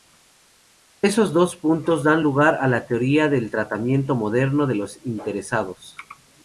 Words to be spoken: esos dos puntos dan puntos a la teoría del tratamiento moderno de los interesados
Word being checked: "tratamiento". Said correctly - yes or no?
yes